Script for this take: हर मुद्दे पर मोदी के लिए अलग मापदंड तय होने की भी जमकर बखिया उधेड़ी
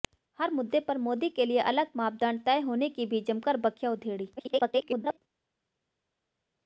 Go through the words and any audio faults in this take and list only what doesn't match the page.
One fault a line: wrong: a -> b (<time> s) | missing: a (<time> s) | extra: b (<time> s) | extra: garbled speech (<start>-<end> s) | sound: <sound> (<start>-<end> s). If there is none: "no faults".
extra: garbled speech (4.4-5.2 s)